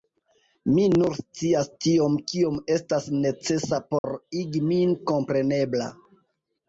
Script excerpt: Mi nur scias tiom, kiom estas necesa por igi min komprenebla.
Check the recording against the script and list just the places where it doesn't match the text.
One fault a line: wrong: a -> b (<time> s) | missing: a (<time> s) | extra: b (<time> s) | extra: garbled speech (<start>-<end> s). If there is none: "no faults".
no faults